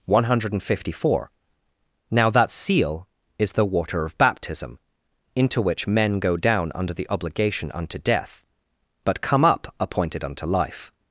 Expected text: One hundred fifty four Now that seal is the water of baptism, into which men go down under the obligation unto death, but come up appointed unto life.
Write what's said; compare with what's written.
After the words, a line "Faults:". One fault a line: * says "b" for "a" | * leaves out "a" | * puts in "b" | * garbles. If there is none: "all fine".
One hundred fifty four Now that seal is the water of baptism, into which men go down under the obligation unto death, but come up appointed unto life.
Faults:
all fine